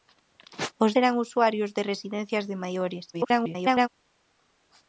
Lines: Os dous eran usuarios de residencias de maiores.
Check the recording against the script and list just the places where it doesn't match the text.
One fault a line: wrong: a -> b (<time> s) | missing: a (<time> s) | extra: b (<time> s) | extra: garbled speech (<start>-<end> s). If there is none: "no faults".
missing: dous (0.9 s)
extra: garbled speech (3.1-3.9 s)